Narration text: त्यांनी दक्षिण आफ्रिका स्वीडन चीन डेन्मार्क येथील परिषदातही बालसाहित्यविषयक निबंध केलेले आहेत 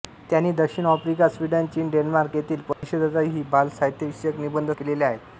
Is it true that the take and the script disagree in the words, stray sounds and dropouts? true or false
true